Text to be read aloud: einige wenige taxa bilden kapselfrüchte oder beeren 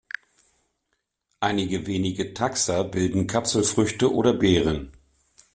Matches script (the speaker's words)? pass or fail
pass